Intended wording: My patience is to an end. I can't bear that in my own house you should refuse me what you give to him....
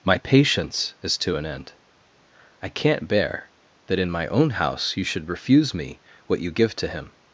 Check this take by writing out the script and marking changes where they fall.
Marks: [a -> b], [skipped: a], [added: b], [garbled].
My patience is to an end. I can't bear that in my own house you should refuse me what you give to him....